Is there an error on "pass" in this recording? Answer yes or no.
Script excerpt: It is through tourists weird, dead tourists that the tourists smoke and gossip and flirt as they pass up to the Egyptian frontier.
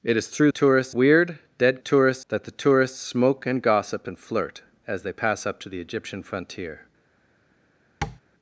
no